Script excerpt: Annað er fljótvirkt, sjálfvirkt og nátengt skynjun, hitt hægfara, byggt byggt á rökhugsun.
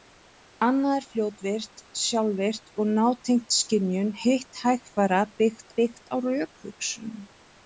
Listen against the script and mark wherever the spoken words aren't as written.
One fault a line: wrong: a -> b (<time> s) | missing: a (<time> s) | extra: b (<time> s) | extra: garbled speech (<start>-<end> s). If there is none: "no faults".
no faults